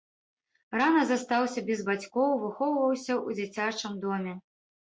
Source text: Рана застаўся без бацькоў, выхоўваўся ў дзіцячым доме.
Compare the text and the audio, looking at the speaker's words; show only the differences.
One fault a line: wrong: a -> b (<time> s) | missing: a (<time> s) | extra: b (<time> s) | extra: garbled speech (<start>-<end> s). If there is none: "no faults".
no faults